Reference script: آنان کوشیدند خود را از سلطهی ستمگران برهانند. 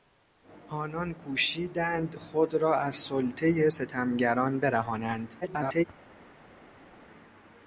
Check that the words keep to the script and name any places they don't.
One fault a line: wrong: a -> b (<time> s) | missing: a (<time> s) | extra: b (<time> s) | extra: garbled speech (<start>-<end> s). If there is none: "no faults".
extra: garbled speech (5.4-5.8 s)